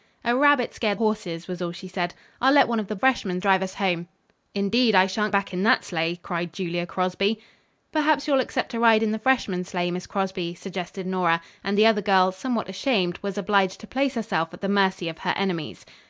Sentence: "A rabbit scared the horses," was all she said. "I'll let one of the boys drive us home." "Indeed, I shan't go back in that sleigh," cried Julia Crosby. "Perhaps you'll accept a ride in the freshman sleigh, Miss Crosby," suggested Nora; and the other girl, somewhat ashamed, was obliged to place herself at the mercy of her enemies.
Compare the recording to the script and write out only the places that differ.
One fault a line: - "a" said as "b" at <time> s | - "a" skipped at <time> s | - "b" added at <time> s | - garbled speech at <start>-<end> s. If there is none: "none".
- "the" skipped at 1.0 s
- "boys" said as "freshman" at 2.9 s
- "go" skipped at 5.3 s